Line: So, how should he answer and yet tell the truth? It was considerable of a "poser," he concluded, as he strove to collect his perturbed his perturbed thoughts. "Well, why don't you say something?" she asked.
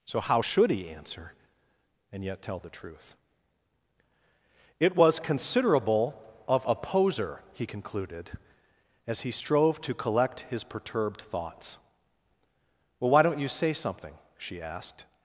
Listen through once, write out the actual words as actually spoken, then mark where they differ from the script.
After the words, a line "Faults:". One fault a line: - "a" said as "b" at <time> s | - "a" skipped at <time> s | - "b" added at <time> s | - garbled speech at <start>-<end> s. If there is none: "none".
So, how should he answer and yet tell the truth? It was considerable of a "poser," he concluded, as he strove to collect his perturbed thoughts. "Well, why don't you say something?" she asked.
Faults:
- "his perturbed" skipped at 11.2 s